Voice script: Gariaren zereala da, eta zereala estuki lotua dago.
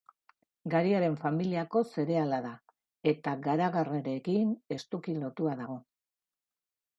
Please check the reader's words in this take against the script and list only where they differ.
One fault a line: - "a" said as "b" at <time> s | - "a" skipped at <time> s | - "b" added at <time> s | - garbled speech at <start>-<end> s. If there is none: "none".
- "familiako" added at 1.2 s
- "zereala" said as "garagarrarekin" at 3.5 s